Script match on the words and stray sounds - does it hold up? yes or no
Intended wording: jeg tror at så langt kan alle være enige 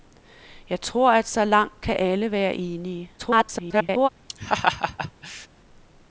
no